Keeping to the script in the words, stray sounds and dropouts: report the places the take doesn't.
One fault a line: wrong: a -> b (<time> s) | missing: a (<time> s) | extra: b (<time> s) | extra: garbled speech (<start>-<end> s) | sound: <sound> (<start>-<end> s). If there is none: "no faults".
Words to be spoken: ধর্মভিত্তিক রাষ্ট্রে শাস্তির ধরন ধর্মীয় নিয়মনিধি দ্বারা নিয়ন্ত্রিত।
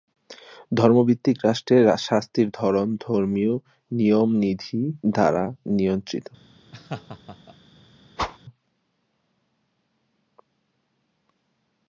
sound: laugh (6.7-7.6 s)
sound: whoosh (8.2-8.4 s)